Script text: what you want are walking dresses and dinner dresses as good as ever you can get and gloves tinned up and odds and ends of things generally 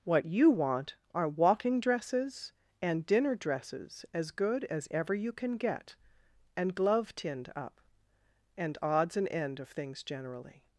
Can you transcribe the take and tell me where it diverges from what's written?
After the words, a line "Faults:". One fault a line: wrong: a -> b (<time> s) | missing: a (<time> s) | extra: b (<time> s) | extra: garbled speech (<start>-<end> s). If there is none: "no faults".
what you want are walking dresses and dinner dresses as good as ever you can get and glove tinned up and odds and end of things generally
Faults:
wrong: gloves -> glove (6.7 s)
wrong: ends -> end (9.3 s)